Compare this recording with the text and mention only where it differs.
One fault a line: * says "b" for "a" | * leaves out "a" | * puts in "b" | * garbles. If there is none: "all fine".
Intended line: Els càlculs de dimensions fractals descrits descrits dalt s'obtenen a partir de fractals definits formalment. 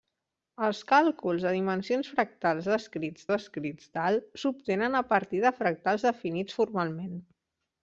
all fine